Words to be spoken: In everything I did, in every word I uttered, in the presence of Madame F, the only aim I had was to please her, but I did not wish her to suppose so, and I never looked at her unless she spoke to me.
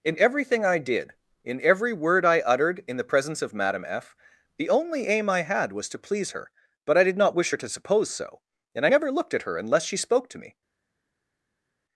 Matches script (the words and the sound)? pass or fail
pass